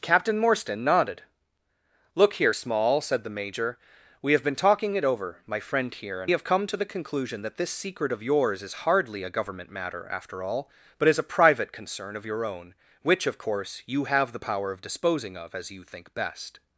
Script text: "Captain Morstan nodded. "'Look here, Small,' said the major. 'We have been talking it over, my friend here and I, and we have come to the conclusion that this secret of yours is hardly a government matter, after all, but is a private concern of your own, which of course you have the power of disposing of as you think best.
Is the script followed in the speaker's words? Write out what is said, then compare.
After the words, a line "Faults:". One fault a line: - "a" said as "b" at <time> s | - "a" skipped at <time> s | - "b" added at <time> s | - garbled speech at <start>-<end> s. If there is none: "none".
"Captain Morstan nodded. "'Look here, Small,' said the major. 'We have been talking it over, my friend here and have come to the conclusion that this secret of yours is hardly a government matter, after all, but is a private concern of your own, which of course you have the power of disposing of as you think best.
Faults:
- "I and we" skipped at 6.3 s